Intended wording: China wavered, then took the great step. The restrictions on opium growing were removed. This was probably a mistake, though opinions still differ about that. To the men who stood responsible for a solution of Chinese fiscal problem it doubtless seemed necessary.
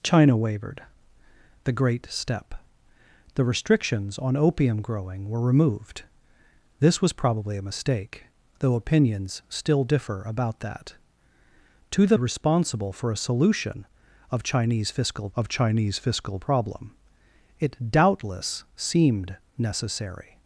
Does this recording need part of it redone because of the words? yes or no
yes